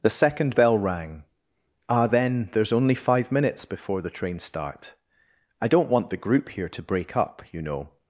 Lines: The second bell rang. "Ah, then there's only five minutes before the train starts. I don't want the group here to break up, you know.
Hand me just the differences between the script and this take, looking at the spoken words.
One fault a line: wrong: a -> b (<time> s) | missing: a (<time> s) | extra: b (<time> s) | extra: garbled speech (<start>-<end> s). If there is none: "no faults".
wrong: starts -> start (4.4 s)